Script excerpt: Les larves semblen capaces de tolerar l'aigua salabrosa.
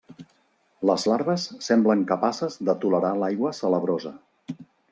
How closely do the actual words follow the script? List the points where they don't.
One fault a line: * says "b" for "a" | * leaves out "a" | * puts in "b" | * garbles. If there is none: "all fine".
all fine